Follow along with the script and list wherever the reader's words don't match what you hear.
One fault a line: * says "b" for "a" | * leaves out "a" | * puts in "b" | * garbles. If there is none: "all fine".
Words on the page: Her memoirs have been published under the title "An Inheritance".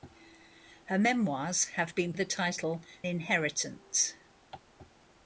* leaves out "published under"
* leaves out "An"